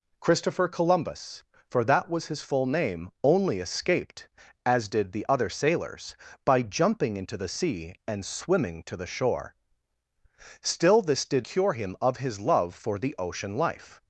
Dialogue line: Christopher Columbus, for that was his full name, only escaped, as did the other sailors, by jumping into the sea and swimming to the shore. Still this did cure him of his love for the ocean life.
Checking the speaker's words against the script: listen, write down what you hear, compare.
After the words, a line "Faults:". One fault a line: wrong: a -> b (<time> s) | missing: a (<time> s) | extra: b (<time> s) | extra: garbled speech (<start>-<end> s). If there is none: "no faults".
Christopher Columbus, for that was his full name, only escaped, as did the other sailors, by jumping into the sea and swimming to the shore. Still this did cure him of his love for the ocean life.
Faults:
no faults